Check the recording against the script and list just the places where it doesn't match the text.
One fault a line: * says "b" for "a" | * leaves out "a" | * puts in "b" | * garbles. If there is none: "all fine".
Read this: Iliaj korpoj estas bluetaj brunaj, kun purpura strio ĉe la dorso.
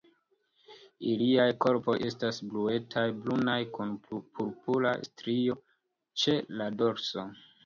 all fine